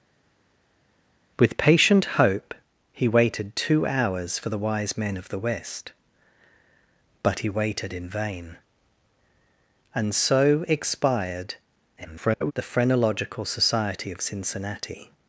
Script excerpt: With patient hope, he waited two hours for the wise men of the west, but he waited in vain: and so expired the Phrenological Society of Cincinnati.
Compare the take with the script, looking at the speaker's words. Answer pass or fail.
fail